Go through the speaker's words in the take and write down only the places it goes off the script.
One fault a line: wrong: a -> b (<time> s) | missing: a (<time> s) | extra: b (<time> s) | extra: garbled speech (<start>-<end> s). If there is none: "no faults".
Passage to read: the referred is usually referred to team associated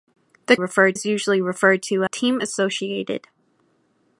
no faults